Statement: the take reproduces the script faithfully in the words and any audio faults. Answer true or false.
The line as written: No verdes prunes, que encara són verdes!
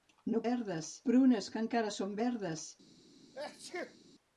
false